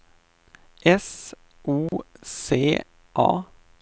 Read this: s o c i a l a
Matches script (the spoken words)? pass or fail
fail